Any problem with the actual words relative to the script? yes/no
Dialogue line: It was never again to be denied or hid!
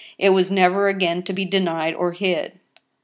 no